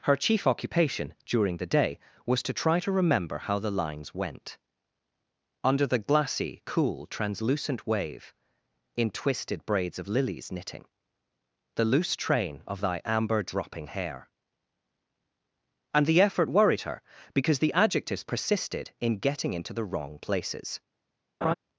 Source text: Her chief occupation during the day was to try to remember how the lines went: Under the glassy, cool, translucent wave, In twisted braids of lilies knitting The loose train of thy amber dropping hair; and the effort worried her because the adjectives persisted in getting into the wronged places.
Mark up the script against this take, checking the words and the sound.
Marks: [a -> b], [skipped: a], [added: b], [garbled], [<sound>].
Her chief occupation during the day was to try to remember how the lines went: Under the glassy, cool, translucent wave, In twisted braids of lilies knitting The loose train of thy amber dropping hair; and the effort worried her because the adjectives persisted in getting into the [wronged -> wrong] places. [laugh]